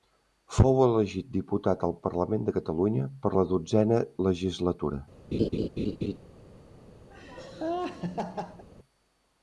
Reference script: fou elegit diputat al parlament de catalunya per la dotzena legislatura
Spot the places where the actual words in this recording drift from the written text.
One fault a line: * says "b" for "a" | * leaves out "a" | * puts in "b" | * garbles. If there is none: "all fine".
all fine